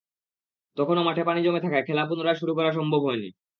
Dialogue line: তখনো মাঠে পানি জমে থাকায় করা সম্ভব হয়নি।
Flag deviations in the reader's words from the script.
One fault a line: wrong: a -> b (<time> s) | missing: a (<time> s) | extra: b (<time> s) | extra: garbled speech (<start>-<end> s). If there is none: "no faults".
extra: খেলা পুনরায় শুরু (1.9 s)